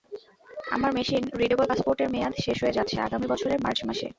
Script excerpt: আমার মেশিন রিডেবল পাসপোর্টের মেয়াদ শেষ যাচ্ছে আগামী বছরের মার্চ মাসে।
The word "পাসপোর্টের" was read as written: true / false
true